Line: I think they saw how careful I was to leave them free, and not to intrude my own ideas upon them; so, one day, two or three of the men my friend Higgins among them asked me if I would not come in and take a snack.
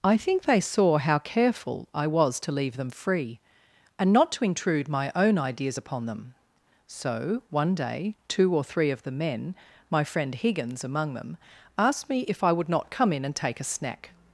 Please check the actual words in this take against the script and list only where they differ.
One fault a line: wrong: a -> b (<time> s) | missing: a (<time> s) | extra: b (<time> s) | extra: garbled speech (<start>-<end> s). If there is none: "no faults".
no faults